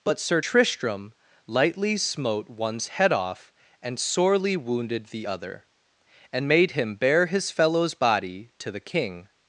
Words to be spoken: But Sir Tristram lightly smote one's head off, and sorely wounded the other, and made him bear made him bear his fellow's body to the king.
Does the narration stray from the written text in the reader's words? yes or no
yes